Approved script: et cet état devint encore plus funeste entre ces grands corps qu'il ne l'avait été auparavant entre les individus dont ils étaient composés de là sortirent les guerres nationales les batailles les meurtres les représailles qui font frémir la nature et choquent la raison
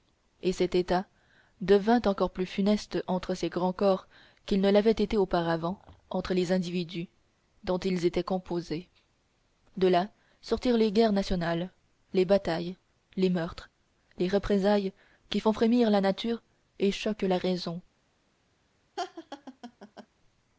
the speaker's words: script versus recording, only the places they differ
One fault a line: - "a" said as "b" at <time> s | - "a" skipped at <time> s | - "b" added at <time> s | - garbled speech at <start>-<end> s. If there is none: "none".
none